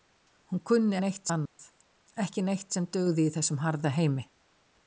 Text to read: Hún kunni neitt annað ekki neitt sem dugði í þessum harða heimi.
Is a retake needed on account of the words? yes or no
no